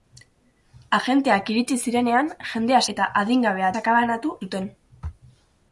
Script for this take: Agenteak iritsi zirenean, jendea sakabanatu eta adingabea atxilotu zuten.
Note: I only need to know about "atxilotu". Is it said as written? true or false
false